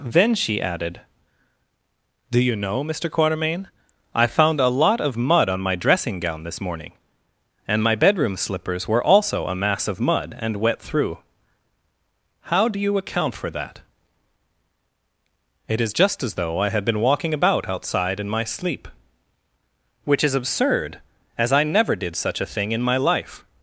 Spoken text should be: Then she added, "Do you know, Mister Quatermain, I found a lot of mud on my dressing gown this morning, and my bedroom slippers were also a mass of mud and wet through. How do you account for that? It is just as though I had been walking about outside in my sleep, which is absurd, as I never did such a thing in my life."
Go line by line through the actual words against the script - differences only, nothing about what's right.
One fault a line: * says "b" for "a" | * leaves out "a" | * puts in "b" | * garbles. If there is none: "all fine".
all fine